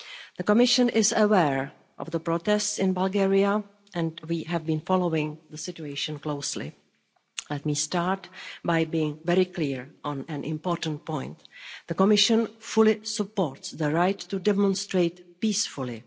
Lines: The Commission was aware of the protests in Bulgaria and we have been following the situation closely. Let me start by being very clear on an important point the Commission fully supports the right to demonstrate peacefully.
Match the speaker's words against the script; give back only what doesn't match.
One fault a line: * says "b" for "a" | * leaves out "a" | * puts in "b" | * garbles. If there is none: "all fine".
* says "is" for "was"